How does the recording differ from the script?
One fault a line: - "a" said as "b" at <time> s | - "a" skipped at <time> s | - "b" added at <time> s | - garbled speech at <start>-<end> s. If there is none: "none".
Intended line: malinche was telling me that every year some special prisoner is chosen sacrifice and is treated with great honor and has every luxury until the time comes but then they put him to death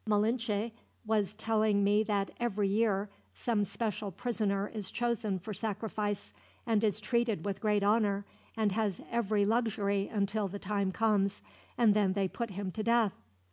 - "for" added at 5.4 s
- "but" said as "and" at 11.8 s